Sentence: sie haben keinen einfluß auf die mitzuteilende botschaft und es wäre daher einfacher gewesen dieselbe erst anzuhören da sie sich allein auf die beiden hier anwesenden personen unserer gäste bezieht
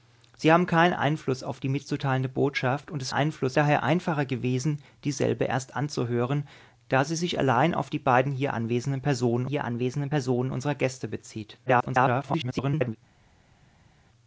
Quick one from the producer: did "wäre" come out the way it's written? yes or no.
no